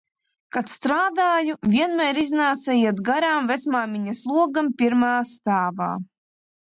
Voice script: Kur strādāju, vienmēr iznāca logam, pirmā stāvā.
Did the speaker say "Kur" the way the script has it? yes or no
no